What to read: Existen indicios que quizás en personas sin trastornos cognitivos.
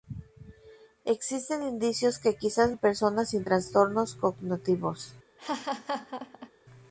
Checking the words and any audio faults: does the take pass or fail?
fail